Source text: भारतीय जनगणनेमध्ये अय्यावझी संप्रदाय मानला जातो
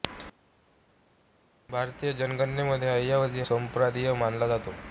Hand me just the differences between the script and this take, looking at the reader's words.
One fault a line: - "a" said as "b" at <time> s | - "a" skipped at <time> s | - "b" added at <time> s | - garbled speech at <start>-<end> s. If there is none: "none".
none